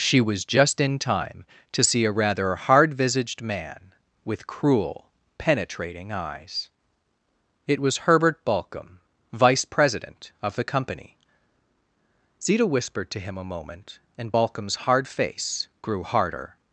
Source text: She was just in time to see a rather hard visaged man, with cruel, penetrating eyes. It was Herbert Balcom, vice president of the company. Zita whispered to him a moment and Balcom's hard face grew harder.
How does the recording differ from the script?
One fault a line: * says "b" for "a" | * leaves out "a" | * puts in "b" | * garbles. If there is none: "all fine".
all fine